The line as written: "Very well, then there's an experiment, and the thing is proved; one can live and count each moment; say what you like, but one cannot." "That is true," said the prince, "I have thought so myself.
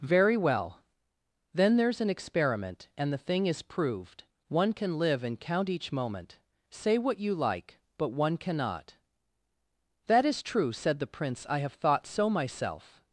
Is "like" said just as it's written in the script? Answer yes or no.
yes